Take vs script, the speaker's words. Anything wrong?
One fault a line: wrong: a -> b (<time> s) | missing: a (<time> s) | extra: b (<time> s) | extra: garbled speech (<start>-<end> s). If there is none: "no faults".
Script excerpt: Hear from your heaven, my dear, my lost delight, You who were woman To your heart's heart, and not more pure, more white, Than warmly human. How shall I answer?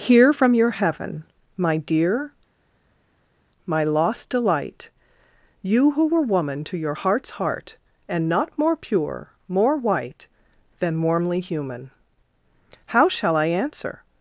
no faults